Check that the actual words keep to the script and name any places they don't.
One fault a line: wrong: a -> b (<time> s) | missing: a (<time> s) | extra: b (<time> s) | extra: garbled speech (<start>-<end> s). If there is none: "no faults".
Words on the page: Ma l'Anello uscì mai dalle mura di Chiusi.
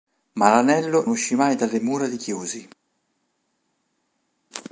no faults